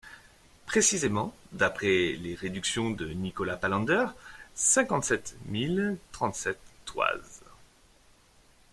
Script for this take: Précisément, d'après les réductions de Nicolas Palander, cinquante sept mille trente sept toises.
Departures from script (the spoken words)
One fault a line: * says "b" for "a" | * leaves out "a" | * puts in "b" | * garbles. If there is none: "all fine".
all fine